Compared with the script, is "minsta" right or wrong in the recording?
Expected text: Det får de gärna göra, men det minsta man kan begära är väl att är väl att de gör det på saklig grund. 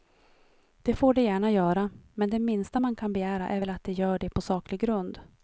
right